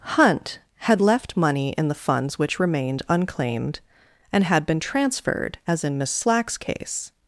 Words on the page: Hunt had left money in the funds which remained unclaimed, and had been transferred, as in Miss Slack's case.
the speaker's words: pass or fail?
pass